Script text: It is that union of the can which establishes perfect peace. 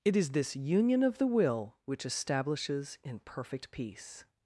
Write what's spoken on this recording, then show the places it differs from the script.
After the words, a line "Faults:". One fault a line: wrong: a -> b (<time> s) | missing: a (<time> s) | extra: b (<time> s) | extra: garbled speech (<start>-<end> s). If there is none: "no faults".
It is this union of the will which establishes in perfect peace.
Faults:
wrong: that -> this (0.3 s)
wrong: can -> will (1.3 s)
extra: in (3.0 s)